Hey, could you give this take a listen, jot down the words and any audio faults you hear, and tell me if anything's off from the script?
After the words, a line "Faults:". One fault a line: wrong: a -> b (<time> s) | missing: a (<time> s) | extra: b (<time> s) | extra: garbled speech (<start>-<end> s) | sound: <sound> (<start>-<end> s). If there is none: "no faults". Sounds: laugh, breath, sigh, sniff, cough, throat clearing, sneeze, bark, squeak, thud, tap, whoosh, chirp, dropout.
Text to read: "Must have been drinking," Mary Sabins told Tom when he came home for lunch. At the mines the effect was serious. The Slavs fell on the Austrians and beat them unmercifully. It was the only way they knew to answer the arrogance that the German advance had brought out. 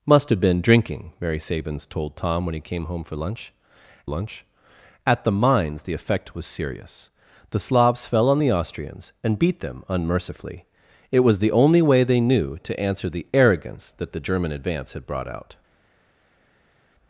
"Must have been drinking," Mary Sabins told Tom when he came home for lunch lunch. At the mines the effect was serious. The Slavs fell on the Austrians and beat them unmercifully. It was the only way they knew to answer the arrogance that the German advance had brought out.
Faults:
extra: lunch (4.1 s)